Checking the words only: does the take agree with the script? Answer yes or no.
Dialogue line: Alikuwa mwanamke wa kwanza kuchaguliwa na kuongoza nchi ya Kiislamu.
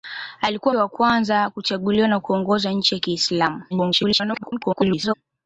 no